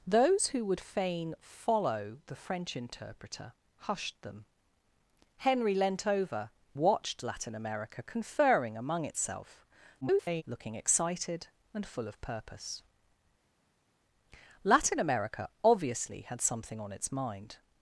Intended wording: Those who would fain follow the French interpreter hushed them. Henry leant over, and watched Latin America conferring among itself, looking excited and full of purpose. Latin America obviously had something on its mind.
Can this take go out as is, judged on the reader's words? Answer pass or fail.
fail